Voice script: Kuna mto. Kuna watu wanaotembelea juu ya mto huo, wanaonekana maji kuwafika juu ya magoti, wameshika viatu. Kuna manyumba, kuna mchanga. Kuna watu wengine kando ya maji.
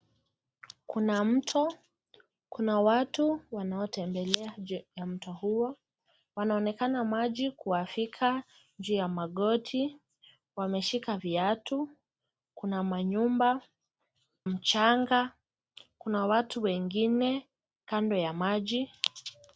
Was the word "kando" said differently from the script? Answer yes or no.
no